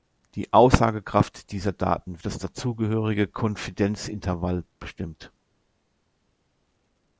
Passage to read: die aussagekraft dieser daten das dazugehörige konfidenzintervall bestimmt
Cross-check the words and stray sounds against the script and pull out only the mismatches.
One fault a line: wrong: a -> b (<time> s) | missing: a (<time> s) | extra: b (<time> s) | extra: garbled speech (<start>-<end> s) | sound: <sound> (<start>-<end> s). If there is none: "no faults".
no faults